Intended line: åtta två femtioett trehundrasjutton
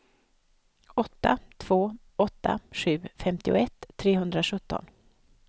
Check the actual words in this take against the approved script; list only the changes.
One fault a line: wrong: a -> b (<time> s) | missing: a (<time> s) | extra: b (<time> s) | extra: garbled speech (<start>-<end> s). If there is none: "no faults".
extra: åtta sju (2.2 s)